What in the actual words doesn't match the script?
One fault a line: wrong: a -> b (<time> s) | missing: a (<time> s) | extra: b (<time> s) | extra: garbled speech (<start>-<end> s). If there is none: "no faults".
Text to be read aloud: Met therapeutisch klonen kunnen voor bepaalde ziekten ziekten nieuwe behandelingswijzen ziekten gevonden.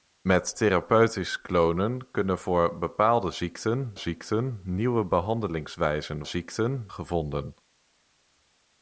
no faults